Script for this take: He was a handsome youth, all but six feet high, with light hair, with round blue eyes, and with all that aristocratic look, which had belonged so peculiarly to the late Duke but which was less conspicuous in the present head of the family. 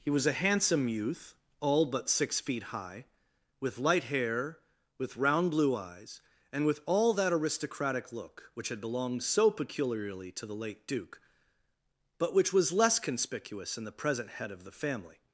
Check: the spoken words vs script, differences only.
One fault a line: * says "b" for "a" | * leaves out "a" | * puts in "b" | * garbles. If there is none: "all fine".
all fine